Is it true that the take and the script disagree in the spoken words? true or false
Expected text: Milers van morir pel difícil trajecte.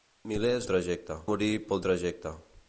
true